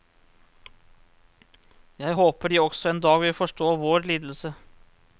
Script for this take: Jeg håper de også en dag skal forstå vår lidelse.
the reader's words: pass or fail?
fail